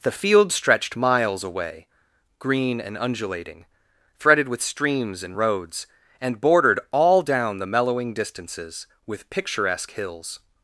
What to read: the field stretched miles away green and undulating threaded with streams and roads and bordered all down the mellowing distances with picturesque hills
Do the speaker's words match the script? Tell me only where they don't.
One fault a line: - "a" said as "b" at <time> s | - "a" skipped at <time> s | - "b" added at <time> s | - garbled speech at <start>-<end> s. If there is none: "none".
none